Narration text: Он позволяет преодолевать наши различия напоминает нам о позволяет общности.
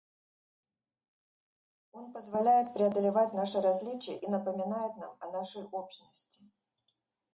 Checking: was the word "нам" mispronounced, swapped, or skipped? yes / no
no